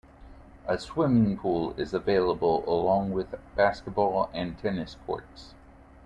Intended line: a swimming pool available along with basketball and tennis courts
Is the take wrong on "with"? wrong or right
right